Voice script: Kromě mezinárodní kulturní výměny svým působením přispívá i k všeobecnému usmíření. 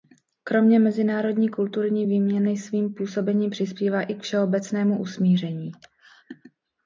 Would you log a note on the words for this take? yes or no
no